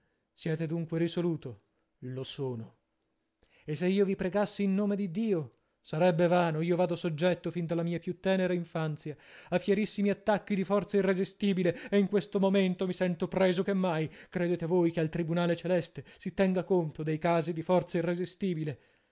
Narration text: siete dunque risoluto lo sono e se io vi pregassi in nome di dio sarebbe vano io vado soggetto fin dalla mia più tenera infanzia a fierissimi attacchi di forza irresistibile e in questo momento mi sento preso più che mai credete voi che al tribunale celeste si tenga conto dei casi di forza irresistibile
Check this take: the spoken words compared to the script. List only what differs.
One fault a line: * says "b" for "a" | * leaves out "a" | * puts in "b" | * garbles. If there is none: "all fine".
* leaves out "più"